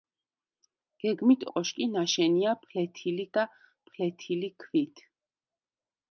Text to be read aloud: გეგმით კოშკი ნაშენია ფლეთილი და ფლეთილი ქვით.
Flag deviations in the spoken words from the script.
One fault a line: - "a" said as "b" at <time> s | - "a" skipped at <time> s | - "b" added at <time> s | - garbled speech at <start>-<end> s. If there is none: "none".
none